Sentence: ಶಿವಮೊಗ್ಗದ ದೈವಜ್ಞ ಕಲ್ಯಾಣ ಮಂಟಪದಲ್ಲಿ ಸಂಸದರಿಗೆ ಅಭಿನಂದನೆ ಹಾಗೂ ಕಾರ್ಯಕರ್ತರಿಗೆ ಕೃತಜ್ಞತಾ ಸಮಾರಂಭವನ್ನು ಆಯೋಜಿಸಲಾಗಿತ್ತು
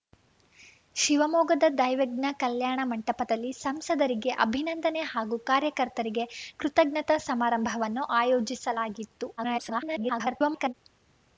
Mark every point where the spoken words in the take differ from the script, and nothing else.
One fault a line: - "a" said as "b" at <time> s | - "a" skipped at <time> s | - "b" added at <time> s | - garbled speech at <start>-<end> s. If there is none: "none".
- garbled speech at 9.4-10.7 s